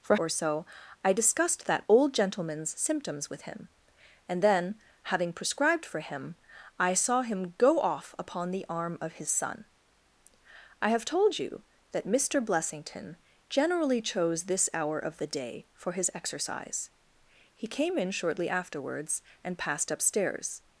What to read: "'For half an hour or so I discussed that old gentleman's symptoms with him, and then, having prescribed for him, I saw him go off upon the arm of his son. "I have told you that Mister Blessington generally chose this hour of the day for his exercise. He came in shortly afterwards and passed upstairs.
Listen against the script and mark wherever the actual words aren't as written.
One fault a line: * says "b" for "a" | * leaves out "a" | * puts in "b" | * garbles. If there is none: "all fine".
* leaves out "half an hour"